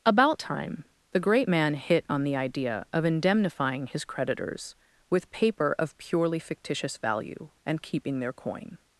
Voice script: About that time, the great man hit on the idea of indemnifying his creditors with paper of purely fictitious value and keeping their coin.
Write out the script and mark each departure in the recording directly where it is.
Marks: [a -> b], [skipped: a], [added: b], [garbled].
About [skipped: that] time, the great man hit on the idea of indemnifying his creditors with paper of purely fictitious value and keeping their coin.